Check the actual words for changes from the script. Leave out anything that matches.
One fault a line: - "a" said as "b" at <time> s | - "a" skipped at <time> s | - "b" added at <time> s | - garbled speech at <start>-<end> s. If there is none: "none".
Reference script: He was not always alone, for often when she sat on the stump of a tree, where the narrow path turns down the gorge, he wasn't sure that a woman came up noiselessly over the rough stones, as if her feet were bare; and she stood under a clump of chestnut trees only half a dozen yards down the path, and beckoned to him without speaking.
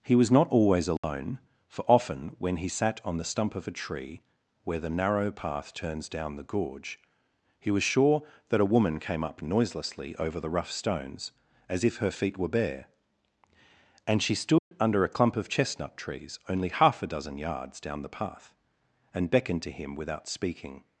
- "she" said as "he" at 2.6 s
- "wasn't" said as "was" at 7.7 s